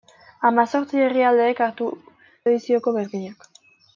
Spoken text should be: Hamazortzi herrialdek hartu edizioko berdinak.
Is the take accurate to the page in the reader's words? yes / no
yes